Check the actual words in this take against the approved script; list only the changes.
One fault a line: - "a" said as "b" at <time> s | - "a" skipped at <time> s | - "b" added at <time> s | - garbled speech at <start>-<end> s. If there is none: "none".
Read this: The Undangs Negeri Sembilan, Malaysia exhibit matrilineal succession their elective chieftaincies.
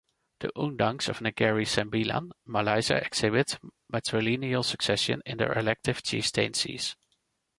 - "of" added at 1.1 s
- "in" added at 5.3 s